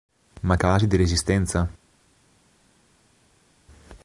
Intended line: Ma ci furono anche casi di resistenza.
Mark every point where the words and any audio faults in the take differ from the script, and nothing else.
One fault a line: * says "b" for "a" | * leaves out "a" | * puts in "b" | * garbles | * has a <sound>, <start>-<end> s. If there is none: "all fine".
* leaves out "ci furono anche"